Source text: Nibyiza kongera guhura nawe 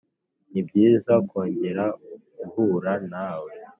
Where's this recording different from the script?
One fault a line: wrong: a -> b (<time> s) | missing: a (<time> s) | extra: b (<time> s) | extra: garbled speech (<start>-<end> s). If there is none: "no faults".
no faults